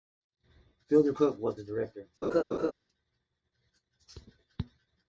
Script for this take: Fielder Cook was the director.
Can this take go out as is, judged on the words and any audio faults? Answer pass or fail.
fail